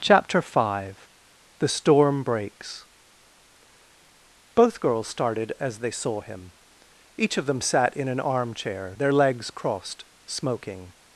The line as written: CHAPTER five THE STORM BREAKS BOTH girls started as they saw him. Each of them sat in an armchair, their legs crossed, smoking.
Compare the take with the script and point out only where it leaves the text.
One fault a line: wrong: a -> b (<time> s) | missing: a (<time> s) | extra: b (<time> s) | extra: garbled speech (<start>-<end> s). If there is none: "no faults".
no faults